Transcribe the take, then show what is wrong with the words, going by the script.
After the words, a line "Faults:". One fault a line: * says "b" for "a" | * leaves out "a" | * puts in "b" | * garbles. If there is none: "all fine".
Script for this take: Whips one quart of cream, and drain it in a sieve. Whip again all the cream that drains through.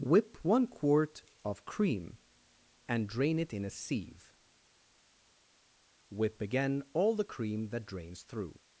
Whip one quart of cream, and drain it in a sieve. Whip again all the cream that drains through.
Faults:
* says "Whip" for "Whips"